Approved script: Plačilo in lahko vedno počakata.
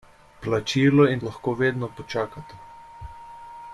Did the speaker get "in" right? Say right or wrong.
right